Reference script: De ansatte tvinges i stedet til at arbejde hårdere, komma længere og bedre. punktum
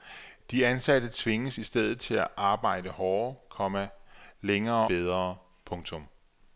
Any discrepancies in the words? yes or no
yes